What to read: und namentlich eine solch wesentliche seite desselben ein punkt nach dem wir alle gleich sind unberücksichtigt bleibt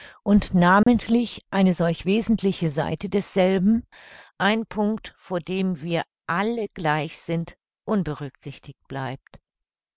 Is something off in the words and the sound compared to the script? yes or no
yes